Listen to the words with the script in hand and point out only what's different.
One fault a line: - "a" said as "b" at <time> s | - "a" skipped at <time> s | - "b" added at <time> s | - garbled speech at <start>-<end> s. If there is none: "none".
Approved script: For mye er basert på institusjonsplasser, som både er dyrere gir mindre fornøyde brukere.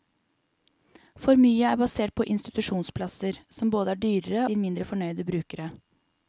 none